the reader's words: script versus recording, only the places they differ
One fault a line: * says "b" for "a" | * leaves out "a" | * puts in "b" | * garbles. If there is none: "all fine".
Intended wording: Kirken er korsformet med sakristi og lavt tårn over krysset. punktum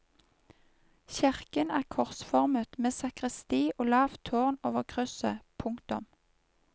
all fine